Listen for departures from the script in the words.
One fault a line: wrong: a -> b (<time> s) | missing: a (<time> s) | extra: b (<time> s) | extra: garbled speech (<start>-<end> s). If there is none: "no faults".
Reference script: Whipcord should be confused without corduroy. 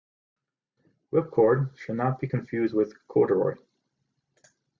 extra: not (2.0 s)
wrong: without -> with (2.7 s)